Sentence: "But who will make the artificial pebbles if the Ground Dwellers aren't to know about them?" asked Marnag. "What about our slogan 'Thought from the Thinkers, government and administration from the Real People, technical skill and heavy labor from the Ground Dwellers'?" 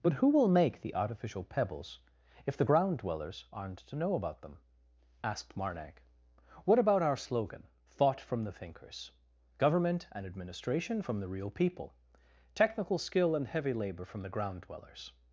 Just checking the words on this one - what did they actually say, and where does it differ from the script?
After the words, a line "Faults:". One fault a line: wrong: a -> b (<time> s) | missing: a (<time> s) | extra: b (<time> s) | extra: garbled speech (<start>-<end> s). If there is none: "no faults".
"But who will make the artificial pebbles if the Ground Dwellers aren't to know about them?" asked Marnag. "What about our slogan 'Thought from the Thinkers, government and administration from the Real People, technical skill and heavy labor from the Ground Dwellers'?"
Faults:
no faults